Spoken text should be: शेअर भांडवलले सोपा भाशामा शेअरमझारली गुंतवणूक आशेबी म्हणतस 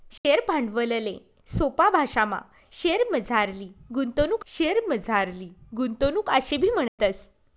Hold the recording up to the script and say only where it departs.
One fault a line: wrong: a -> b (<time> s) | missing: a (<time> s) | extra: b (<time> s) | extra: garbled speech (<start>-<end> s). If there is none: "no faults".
extra: शेअरमझारली गुंतवणूक (4.5 s)